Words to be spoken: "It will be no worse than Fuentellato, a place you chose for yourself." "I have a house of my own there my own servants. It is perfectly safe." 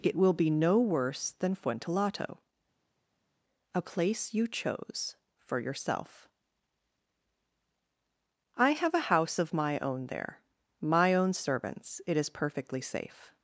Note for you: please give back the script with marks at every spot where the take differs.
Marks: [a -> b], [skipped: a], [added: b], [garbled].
"It will be no worse than Fuentellato, a place you chose for yourself." "I have a house of my own there my own servants. It is perfectly safe."